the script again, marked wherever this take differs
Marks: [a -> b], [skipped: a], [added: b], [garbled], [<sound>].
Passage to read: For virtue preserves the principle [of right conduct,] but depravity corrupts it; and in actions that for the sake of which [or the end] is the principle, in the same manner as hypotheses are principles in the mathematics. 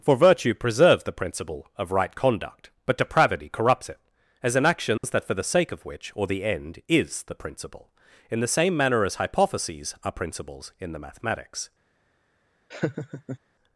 For virtue preserves the principle [of right conduct,] but depravity corrupts it; [and -> as] in actions [dropout] that for the sake of which [or the end] is the principle, in the same manner as hypotheses are principles in the mathematics. [laugh]